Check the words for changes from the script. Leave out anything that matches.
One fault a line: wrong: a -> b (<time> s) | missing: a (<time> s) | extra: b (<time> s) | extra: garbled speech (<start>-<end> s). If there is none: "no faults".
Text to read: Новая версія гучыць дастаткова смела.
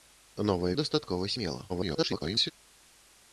missing: версія гучыць (0.7 s)
extra: garbled speech (1.7-2.5 s)